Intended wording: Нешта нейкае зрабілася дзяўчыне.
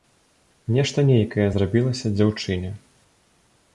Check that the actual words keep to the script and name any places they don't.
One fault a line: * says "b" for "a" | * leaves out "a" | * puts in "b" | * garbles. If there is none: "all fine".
all fine